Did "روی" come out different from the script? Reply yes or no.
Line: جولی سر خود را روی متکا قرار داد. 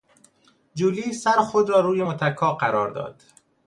no